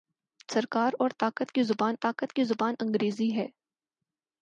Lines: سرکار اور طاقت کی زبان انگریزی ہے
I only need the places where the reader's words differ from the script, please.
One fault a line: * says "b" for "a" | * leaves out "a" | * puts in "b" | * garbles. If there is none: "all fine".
* puts in "طاقت کی زبان"